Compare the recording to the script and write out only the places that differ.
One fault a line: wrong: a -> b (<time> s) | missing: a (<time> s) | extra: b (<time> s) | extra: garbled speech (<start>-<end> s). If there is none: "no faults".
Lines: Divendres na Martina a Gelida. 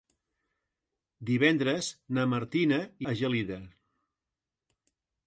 no faults